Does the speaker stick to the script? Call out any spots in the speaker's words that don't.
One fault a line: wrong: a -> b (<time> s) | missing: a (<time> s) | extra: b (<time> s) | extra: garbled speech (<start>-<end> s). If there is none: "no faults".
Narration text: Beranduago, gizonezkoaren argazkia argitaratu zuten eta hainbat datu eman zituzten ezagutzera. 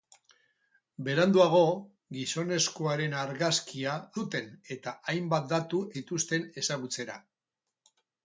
missing: argitaratu (3.9 s)
missing: eman (5.8 s)